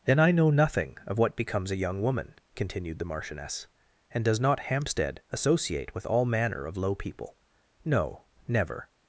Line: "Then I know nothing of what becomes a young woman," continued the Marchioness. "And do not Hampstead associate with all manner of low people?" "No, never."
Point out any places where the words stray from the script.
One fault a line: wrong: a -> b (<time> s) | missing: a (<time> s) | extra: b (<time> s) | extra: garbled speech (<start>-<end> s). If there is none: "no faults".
wrong: do -> does (4.2 s)